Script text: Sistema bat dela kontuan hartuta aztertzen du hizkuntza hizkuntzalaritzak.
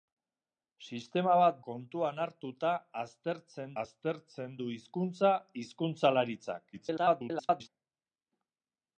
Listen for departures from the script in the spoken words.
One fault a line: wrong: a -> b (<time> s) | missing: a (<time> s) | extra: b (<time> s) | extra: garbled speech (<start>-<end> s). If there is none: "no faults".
missing: dela (1.6 s)
extra: aztertzen (3.8 s)
extra: garbled speech (6.7-7.7 s)